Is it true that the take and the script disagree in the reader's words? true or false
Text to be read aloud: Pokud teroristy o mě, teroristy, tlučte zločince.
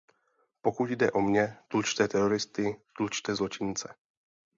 true